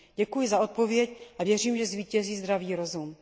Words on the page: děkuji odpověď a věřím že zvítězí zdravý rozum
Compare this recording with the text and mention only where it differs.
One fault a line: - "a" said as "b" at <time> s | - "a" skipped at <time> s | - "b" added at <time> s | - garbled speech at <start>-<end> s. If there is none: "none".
- "za" added at 0.5 s